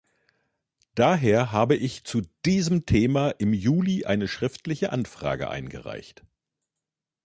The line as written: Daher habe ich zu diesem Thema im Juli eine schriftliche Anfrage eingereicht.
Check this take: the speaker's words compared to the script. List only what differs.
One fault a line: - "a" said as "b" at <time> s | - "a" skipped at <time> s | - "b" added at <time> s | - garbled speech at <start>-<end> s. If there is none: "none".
none